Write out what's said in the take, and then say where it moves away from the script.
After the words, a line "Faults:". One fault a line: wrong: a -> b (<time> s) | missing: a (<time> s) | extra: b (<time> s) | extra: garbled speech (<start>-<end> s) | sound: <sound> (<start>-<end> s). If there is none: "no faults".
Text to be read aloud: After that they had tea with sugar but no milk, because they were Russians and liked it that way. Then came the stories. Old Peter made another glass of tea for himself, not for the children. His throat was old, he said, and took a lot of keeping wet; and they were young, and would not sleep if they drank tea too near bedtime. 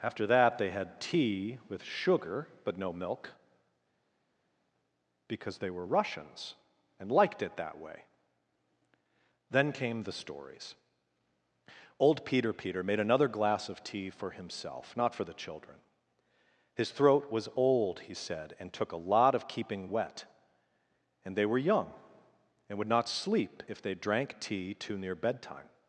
After that they had tea with sugar but no milk, because they were Russians and liked it that way. Then came the stories. Old Peter Peter made another glass of tea for himself, not for the children. His throat was old, he said, and took a lot of keeping wet; and they were young, and would not sleep if they drank tea too near bedtime.
Faults:
extra: Peter (12.5 s)